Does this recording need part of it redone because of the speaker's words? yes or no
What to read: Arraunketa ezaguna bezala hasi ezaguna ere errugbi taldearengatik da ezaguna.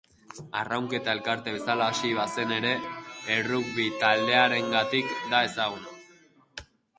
yes